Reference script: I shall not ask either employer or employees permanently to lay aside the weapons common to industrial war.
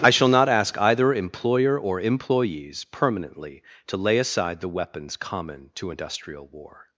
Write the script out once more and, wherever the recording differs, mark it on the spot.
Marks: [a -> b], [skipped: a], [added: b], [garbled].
I shall not ask either employer or employees permanently to lay aside the weapons common to industrial war.